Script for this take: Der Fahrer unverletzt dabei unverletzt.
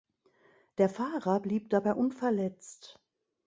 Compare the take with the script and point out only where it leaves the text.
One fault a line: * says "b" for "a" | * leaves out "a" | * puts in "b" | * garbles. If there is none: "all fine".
* says "blieb" for "unverletzt"